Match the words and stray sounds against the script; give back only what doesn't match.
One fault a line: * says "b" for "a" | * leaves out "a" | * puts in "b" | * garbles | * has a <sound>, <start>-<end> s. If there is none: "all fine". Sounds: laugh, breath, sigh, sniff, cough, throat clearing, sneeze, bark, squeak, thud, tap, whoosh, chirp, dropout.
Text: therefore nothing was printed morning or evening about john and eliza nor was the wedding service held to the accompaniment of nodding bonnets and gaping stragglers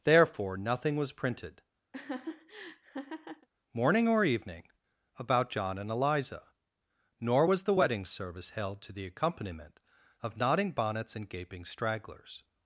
* has a laugh, 1.9-3.5 s